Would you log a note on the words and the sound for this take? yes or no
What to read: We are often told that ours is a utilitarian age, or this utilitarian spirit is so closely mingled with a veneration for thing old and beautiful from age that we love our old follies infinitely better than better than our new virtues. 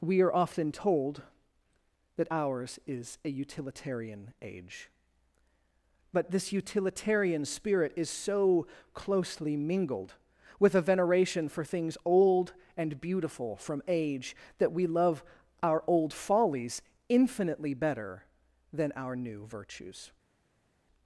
yes